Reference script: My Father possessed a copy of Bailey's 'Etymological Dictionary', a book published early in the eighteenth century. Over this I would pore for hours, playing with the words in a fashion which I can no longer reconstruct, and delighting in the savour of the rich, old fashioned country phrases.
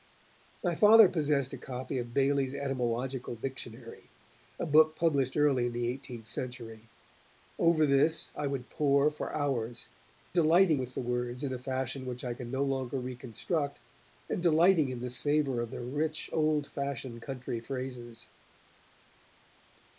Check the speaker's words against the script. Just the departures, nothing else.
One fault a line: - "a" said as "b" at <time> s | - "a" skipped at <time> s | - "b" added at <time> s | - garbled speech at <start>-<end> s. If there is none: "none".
- "playing" said as "delighting" at 10.3 s